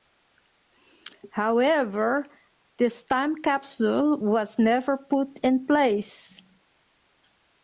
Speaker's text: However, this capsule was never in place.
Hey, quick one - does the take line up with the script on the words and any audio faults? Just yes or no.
no